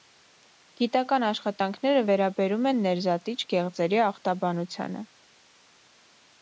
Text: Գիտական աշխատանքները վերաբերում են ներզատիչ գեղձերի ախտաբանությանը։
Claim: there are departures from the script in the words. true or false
false